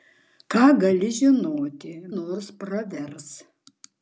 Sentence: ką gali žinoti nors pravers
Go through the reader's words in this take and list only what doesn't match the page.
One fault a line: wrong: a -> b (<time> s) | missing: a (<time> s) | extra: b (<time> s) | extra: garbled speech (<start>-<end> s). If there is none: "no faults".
no faults